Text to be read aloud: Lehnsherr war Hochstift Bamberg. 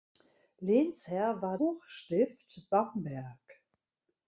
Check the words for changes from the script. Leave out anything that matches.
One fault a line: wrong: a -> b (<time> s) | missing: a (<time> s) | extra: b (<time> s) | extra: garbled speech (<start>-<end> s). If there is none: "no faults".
no faults